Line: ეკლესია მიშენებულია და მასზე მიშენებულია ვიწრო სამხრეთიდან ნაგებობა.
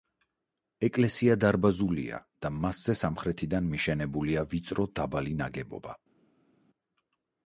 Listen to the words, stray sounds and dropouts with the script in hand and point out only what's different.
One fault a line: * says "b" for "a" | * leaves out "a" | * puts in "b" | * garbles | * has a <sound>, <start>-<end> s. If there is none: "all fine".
* says "დარბაზულია" for "მიშენებულია"
* puts in "სამხრეთიდან"
* says "დაბალი" for "სამხრეთიდან"